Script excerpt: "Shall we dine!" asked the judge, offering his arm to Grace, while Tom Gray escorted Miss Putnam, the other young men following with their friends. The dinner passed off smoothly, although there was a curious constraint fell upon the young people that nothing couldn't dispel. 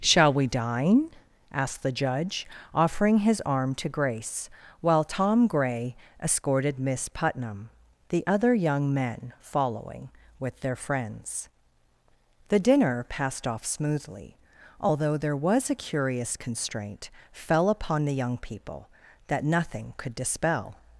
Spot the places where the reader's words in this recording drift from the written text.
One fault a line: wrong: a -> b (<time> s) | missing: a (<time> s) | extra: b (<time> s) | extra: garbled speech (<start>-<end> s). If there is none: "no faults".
wrong: couldn't -> could (20.0 s)